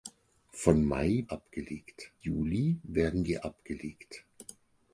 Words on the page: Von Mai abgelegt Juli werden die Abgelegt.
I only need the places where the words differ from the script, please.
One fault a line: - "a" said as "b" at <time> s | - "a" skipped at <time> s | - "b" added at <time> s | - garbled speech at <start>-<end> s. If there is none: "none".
none